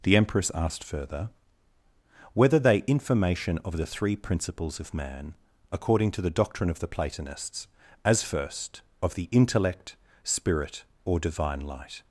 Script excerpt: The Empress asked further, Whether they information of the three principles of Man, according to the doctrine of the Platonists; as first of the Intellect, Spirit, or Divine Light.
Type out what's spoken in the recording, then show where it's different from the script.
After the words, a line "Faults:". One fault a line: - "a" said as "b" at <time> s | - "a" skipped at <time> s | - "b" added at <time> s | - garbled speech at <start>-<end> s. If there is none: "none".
The Empress asked further, Whether they information of the three principles of Man, according to the doctrine of the Platonists; as first of the Intellect, Spirit, or Divine Light.
Faults:
none